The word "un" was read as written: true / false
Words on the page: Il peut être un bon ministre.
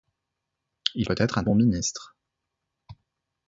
true